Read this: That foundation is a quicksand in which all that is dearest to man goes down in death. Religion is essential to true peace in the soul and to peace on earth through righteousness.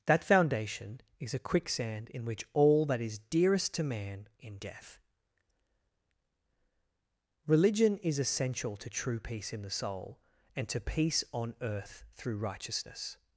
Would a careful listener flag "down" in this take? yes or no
yes